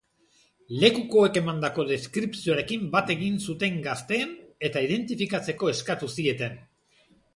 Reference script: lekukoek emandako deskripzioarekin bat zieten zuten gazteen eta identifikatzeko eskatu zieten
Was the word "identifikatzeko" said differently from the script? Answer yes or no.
no